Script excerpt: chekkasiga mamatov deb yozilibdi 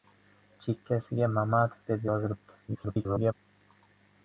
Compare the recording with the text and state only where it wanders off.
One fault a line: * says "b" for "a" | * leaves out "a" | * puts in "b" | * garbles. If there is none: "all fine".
* garbles